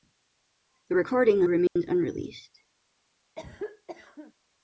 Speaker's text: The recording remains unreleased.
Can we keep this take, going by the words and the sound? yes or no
no